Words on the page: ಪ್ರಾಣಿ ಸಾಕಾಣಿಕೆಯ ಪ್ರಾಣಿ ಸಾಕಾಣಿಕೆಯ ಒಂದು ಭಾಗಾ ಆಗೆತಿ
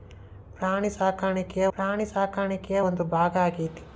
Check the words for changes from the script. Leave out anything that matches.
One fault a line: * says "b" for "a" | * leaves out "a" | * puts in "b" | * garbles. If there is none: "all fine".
all fine